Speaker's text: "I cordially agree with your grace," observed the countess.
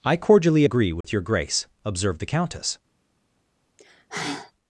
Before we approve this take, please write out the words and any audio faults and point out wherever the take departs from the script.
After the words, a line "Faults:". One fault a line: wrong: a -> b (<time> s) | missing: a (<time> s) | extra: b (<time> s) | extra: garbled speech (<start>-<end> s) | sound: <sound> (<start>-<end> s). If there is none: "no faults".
"I cordially agree with your grace," observed the countess.
Faults:
sound: dropout (1.0-1.0 s)
sound: sigh (3.8-4.5 s)